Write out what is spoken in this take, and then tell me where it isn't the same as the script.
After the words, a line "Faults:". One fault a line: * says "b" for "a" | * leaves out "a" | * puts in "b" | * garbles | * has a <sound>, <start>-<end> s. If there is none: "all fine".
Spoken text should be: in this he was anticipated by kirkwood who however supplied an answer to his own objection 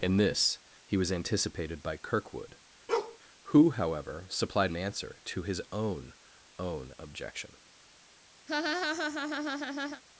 in this he was anticipated by kirkwood who however supplied an answer to his own own objection
Faults:
* has a bark, 2.9-3.2 s
* puts in "own"
* has a laugh, 8.5-10.0 s